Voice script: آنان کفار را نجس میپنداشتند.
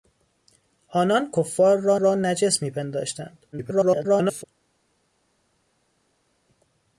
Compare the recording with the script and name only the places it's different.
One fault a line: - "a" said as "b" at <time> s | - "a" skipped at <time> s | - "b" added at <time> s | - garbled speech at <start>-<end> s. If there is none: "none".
- "را" added at 1.9 s
- garbled speech at 3.5-4.4 s